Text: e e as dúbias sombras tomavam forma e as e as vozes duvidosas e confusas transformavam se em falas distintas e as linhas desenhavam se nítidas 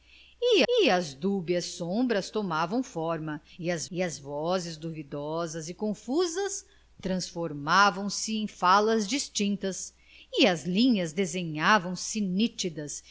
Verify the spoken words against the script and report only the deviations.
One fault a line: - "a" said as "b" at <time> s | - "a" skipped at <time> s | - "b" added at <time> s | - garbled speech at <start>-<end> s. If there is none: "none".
none